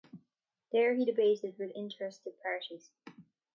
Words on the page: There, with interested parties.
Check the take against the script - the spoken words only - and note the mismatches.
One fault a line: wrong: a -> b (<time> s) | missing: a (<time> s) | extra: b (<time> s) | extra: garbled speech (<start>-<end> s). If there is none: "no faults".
extra: he debated (0.9 s)